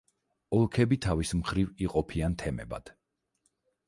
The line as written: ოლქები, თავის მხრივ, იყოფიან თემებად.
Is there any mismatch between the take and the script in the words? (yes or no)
no